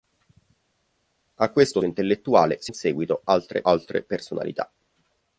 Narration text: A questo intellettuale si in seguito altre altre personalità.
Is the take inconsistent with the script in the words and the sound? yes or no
no